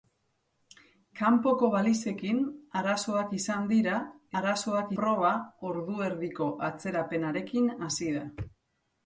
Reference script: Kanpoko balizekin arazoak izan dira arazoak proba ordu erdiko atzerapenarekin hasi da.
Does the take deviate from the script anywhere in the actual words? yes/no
no